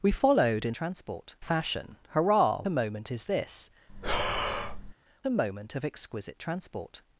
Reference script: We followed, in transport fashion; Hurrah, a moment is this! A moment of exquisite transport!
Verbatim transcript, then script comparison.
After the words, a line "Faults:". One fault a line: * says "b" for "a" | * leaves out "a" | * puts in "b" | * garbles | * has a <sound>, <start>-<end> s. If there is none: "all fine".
We followed, in transport fashion; Hurrah, a moment is this! A moment of exquisite transport!
Faults:
* has a breath, 3.9-4.9 s